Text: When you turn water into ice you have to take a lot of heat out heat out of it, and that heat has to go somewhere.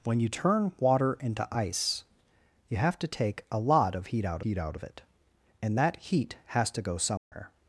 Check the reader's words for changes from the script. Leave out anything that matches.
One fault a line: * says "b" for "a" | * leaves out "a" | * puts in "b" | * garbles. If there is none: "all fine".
all fine